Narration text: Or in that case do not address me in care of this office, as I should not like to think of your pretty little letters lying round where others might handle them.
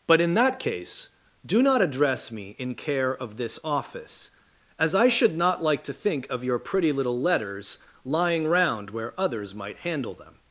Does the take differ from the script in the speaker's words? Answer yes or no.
yes